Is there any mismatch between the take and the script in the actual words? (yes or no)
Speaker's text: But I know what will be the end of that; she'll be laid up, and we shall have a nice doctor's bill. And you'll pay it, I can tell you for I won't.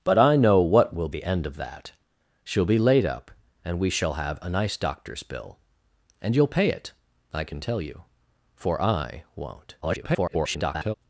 yes